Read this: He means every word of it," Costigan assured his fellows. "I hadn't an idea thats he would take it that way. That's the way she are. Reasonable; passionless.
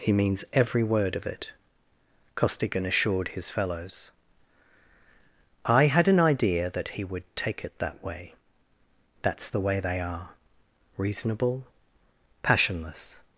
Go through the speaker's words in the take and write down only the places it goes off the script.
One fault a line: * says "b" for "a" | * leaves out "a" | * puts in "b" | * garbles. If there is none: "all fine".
* says "had" for "hadn't"
* says "that" for "thats"
* says "they" for "she"